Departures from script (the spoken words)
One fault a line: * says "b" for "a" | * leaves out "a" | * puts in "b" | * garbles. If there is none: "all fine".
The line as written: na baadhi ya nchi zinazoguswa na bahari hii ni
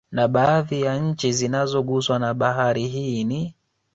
all fine